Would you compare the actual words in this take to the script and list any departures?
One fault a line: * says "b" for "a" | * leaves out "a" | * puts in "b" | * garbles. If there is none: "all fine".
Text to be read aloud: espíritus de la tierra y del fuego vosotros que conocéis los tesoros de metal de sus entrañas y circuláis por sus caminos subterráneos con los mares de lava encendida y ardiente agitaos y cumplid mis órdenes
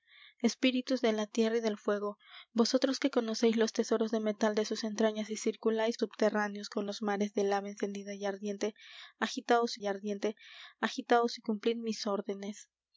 * leaves out "por sus caminos"
* puts in "ardiente agitaos y"